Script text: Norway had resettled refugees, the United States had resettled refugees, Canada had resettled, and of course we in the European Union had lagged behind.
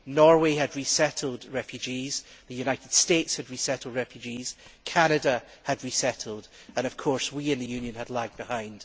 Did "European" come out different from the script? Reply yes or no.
yes